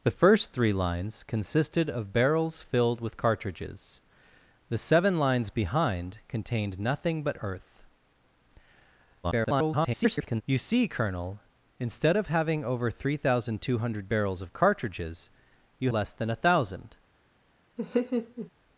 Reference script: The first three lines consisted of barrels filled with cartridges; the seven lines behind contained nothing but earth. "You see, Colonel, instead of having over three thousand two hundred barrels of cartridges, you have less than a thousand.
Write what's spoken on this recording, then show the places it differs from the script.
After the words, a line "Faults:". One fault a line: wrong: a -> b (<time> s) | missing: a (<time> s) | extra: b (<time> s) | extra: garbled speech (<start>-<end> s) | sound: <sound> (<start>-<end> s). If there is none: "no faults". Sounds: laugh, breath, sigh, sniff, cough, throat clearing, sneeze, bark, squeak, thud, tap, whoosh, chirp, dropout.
The first three lines consisted of barrels filled with cartridges; the seven lines behind contained nothing but earth. [garbled] "You see, Colonel, instead of having over three thousand two hundred barrels of cartridges, you less than a thousand.
Faults:
extra: garbled speech (9.2-10.4 s)
missing: have (15.9 s)
sound: laugh (17.8-18.5 s)